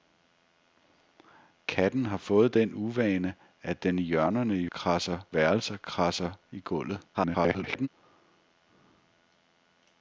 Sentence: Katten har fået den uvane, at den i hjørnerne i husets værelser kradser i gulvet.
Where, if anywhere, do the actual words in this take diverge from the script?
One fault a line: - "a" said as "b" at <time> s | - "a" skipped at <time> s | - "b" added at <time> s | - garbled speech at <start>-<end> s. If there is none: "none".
- "husets" said as "kradser" at 4.6 s
- garbled speech at 7.1-7.9 s